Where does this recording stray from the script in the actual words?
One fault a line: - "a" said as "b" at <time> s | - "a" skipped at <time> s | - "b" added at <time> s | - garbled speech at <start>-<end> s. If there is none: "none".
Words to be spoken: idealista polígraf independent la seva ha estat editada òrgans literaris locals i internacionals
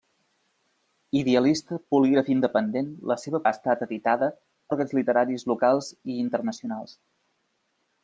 none